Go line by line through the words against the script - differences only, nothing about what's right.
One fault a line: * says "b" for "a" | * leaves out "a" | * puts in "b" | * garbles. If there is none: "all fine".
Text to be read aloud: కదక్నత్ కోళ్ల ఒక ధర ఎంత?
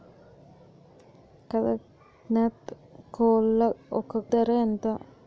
all fine